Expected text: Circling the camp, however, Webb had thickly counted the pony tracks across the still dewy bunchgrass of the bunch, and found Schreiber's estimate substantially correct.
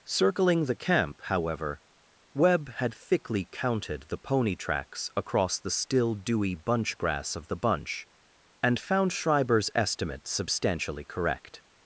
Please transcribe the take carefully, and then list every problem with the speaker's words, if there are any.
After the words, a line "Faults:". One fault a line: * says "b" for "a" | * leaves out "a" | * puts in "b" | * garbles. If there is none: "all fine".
Circling the camp, however, Webb had thickly counted the pony tracks across the still dewy bunchgrass of the bunch, and found Schreiber's estimate substantially correct.
Faults:
all fine